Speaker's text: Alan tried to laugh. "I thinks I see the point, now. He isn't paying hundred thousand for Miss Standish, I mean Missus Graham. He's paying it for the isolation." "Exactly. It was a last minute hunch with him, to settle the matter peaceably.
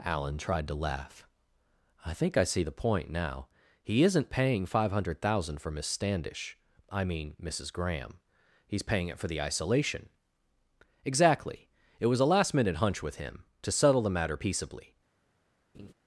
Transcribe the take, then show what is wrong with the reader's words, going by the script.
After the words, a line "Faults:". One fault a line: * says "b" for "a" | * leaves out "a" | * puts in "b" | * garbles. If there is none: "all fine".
Alan tried to laugh. "I think I see the point, now. He isn't paying five hundred thousand for Miss Standish, I mean Missus Graham. He's paying it for the isolation." "Exactly. It was a last minute hunch with him, to settle the matter peaceably.
Faults:
* says "think" for "thinks"
* puts in "five"